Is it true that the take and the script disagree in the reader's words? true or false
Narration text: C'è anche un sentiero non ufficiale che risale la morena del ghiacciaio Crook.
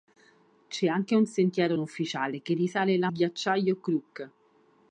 true